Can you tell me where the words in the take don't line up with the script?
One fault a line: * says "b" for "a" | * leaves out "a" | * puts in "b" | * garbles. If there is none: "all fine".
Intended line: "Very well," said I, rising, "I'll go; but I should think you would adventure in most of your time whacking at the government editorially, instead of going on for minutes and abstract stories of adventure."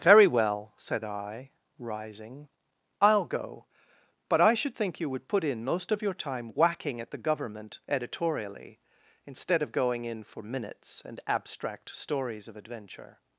* says "put" for "adventure"
* says "in" for "on"